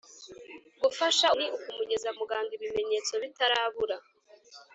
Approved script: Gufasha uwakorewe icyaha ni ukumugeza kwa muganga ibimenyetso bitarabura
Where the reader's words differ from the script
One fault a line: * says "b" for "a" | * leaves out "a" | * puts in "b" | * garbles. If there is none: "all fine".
* leaves out "uwakorewe icyaha"
* leaves out "kwa"